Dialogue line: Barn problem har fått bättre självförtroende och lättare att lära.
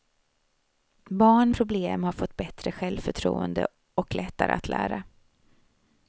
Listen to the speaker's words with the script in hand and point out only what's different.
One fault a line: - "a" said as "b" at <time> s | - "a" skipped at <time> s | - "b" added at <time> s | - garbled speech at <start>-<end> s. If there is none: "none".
none